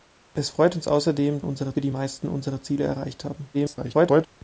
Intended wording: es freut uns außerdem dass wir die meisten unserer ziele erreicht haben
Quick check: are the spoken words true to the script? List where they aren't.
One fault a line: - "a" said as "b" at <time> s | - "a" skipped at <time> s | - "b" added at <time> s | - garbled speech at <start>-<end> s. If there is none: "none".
- "dass" said as "unserer" at 1.4 s
- garbled speech at 3.5-4.3 s